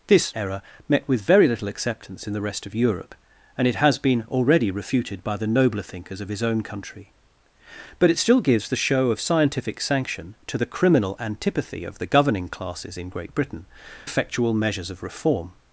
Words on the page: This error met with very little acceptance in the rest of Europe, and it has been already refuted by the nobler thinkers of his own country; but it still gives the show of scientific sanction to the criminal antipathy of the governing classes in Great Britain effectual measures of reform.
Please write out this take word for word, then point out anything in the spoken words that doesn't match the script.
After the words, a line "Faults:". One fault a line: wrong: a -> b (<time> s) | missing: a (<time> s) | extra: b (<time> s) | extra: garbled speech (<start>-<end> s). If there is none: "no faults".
This error met with very little acceptance in the rest of Europe, and it has been already refuted by the nobler thinkers of his own country; but it still gives the show of scientific sanction to the criminal antipathy of the governing classes in Great Britain effectual measures of reform.
Faults:
no faults